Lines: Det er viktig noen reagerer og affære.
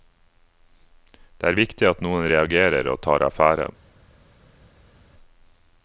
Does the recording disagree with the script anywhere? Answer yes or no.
yes